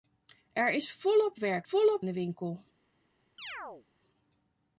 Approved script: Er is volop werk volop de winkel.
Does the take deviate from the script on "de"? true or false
false